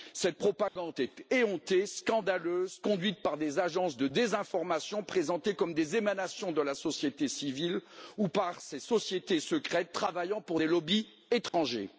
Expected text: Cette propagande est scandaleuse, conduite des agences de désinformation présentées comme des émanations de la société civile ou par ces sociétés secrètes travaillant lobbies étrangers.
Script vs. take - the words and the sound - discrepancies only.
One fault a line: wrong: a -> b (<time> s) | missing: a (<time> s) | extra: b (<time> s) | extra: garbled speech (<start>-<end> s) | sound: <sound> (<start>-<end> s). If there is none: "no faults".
sound: dropout (0.7-0.8 s)
extra: éhontée (1.3 s)
extra: par (3.2 s)
extra: pour des (10.4 s)
sound: dropout (11.5-11.5 s)